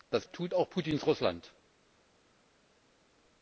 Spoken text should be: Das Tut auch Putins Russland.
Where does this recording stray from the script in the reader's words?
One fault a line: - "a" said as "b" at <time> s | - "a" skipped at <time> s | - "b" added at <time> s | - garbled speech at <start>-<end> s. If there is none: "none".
none